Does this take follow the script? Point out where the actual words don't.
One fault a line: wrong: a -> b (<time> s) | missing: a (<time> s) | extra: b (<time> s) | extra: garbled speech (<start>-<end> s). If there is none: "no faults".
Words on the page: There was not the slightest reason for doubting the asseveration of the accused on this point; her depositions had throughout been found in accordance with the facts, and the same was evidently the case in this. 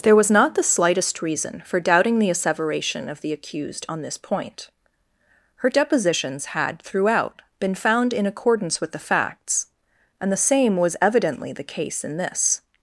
no faults